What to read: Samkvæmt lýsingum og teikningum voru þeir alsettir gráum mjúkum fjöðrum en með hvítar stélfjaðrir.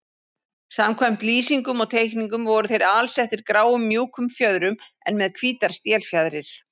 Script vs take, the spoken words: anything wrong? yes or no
no